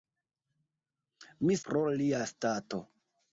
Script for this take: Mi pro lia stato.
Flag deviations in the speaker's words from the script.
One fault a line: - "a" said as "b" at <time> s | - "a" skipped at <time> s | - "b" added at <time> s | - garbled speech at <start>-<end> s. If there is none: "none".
none